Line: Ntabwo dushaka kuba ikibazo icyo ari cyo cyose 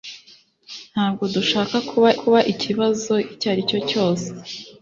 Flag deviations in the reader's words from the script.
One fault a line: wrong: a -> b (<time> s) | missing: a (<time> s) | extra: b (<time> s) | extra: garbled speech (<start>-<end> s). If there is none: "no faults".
extra: kuba (2.2 s)